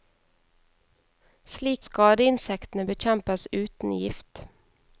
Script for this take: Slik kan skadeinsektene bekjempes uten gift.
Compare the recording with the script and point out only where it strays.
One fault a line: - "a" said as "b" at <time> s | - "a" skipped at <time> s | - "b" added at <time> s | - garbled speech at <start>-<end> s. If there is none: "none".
- "kan" skipped at 1.8 s